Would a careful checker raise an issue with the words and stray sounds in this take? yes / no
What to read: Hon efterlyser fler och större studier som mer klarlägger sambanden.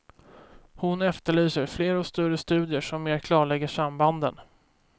no